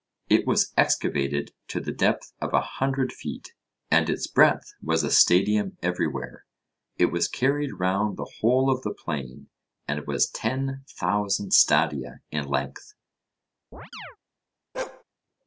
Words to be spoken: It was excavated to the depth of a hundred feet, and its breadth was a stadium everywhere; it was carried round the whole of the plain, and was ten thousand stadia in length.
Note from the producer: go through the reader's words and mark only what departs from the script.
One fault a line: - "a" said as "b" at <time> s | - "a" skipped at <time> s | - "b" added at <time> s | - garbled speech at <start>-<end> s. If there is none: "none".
none